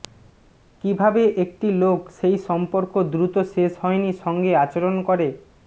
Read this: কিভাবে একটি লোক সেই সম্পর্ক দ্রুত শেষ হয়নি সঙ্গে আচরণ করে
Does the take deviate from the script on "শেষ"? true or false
false